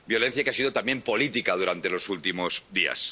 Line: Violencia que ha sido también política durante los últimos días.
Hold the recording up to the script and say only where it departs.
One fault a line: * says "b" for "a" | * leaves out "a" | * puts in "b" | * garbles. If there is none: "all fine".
all fine